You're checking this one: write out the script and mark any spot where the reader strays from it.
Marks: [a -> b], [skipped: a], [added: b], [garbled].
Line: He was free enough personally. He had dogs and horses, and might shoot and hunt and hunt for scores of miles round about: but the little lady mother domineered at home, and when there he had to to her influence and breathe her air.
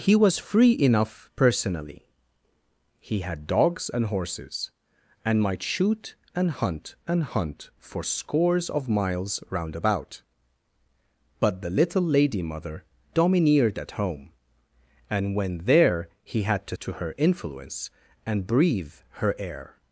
He was free enough personally. He had dogs and horses, and might shoot and hunt and hunt for scores of miles round about: but the little lady mother domineered at home, and when there he had to to her influence and breathe her air.